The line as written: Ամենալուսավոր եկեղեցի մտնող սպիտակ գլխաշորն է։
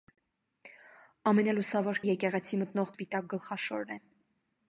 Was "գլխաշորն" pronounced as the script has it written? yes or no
yes